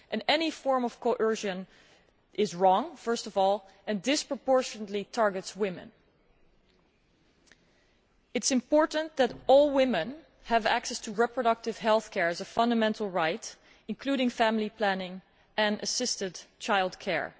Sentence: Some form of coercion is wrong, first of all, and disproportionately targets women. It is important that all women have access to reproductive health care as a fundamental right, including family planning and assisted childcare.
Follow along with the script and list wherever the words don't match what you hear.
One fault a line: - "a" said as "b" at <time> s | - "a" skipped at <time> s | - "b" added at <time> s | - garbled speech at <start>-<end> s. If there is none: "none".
- "Some" said as "Any" at 0.3 s